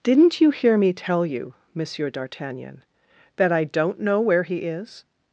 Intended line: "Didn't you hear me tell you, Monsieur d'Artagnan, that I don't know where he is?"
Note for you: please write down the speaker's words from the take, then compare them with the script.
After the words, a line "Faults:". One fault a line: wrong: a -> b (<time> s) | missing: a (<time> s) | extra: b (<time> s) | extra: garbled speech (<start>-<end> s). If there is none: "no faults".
"Didn't you hear me tell you, Monsieur d'Artagnan, that I don't know where he is?"
Faults:
no faults